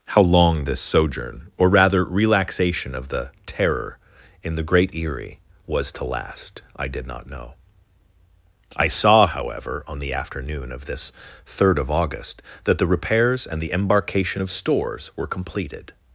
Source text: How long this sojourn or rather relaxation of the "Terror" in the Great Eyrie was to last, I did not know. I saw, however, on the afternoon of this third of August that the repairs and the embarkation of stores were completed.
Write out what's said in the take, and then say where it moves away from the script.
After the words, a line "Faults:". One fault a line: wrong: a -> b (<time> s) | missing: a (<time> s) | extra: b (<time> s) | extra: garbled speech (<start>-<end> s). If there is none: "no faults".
How long this sojourn or rather relaxation of the "Terror" in the Great Eyrie was to last, I did not know. I saw, however, on the afternoon of this third of August that the repairs and the embarkation of stores were completed.
Faults:
no faults